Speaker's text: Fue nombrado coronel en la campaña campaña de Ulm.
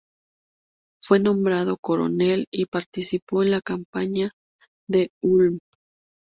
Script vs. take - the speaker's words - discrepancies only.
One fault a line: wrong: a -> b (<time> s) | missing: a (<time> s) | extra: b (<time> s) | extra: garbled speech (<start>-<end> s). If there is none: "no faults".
extra: y participó (2.5 s)
missing: campaña (4.3 s)